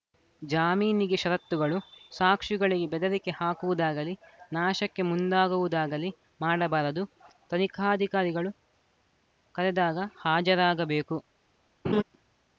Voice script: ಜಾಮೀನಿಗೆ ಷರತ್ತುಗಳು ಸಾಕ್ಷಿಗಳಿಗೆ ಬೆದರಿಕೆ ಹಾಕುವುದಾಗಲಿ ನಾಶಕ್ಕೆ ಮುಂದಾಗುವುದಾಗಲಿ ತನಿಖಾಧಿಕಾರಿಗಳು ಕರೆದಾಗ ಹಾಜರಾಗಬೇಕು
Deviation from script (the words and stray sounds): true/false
true